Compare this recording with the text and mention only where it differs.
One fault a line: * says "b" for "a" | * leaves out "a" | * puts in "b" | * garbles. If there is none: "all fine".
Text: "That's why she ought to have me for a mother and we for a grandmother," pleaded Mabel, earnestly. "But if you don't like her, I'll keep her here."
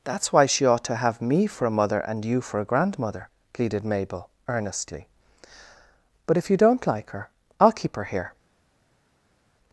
* says "you" for "we"